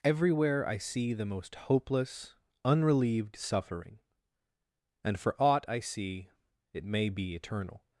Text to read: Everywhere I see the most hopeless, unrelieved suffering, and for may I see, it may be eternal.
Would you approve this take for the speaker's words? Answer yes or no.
no